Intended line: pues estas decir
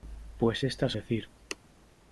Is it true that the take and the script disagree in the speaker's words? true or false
false